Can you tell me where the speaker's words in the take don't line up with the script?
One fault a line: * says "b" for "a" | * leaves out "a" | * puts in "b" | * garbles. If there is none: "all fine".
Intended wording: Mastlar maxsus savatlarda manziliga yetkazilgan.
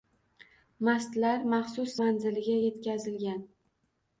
* leaves out "savatlarda"